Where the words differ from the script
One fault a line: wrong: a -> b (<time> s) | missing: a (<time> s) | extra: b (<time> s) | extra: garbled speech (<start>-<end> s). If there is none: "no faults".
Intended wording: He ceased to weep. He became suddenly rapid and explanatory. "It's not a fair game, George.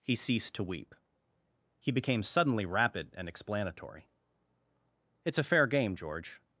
missing: not (5.4 s)